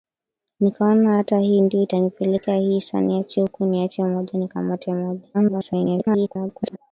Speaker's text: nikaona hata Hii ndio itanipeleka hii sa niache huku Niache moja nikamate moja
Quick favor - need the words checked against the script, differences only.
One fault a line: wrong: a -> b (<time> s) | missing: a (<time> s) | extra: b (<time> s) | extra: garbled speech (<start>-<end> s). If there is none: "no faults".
extra: garbled speech (5.3-6.8 s)